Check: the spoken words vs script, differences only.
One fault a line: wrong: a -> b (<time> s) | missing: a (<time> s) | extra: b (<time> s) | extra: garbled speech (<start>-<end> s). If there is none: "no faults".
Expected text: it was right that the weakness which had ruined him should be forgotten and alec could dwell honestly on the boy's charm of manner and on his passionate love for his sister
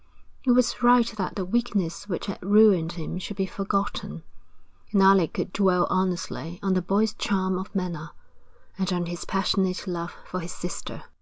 no faults